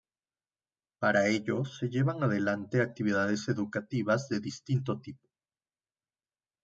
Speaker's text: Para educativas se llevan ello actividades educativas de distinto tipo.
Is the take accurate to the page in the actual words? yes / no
no